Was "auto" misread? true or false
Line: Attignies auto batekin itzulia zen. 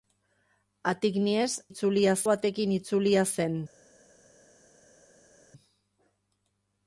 true